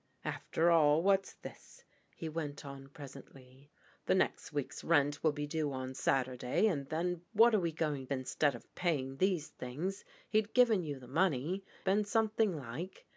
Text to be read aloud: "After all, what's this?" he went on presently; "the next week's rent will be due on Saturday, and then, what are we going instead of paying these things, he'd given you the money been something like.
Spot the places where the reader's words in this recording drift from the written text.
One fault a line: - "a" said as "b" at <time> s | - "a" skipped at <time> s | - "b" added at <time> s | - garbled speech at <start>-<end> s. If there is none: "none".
none